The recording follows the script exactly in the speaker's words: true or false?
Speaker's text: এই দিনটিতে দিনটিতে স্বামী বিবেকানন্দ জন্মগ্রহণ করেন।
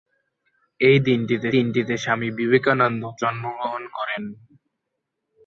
true